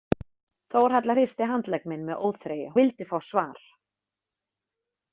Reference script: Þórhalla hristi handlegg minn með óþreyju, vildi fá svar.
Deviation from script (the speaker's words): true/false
false